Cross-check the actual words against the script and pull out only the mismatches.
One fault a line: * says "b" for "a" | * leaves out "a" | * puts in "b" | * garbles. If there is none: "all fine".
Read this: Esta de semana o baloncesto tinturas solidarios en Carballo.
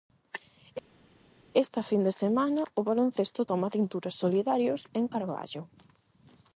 * puts in "fin"
* puts in "toma"